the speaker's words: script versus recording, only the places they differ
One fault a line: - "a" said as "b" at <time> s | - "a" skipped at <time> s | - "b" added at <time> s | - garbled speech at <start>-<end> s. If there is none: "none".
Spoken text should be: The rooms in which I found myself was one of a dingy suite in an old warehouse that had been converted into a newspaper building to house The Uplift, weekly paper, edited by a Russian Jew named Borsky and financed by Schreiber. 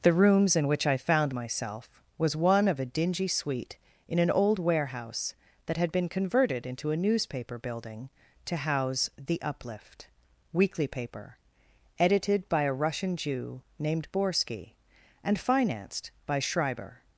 none